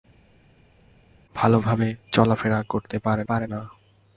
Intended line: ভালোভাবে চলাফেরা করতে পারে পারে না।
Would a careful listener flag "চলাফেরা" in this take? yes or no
no